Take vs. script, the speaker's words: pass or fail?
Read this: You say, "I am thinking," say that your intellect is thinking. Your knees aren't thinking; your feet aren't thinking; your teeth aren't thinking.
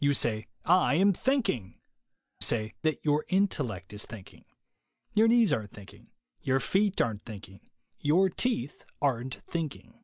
pass